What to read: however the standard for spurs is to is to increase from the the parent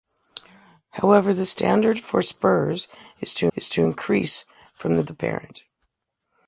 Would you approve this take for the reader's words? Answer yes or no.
yes